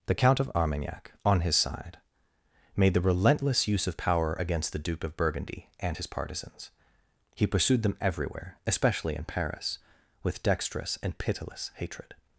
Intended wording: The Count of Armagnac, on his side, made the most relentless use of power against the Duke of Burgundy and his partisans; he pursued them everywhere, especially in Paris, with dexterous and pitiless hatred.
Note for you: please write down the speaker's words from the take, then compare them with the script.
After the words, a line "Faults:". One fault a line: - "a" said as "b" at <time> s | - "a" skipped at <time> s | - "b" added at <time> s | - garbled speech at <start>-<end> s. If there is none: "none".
The Count of Armagnac, on his side, made the relentless use of power against the Duke of Burgundy and his partisans; he pursued them everywhere, especially in Paris, with dexterous and pitiless hatred.
Faults:
- "most" skipped at 3.0 s